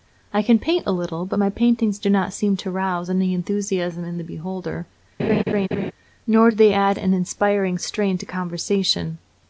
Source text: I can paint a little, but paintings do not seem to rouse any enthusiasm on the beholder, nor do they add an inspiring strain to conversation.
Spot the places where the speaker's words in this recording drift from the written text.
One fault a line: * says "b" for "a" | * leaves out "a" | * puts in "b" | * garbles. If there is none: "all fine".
* puts in "my"
* says "in" for "on"